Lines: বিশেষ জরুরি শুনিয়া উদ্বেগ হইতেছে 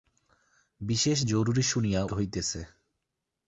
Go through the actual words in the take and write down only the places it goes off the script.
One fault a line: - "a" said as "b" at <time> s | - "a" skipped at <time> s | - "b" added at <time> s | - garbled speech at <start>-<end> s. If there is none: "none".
- "উদ্বেগ" skipped at 2.0 s